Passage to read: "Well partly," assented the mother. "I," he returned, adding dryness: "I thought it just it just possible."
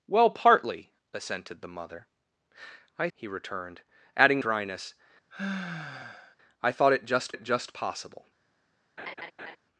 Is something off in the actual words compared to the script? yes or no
no